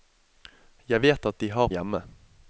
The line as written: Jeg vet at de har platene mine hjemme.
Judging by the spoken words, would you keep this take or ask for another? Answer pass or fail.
fail